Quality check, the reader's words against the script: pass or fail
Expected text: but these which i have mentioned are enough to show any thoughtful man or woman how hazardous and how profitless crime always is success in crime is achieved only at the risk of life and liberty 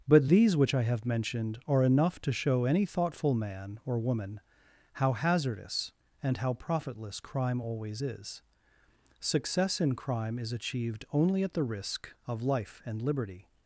pass